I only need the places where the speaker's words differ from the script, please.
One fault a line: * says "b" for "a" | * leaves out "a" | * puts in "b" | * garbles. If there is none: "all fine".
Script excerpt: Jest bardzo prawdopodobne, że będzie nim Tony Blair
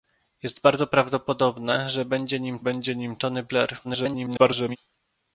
* puts in "będzie nim"
* garbles